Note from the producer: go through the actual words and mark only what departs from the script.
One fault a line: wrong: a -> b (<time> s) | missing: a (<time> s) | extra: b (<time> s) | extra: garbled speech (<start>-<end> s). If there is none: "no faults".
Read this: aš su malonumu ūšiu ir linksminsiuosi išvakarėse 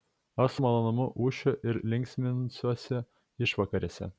no faults